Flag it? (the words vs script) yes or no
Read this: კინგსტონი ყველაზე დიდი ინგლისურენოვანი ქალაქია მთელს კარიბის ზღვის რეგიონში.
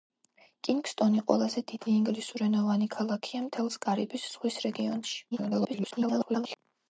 yes